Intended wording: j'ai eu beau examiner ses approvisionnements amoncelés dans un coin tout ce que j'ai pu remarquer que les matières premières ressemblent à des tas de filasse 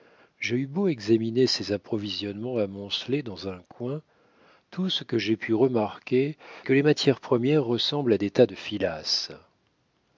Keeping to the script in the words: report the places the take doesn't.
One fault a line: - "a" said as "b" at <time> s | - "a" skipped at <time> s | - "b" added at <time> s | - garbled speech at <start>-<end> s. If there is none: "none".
none